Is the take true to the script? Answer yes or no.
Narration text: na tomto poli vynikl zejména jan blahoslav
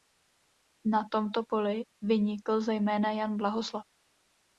yes